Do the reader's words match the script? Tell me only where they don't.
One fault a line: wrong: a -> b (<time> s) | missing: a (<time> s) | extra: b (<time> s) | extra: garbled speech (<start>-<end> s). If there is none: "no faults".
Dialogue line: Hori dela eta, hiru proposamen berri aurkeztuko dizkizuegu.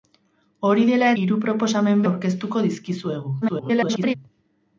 missing: eta (1.1 s)
missing: berri (2.0 s)
extra: garbled speech (3.4-4.1 s)